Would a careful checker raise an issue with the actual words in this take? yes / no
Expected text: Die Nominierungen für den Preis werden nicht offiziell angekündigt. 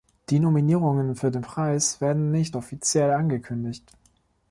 no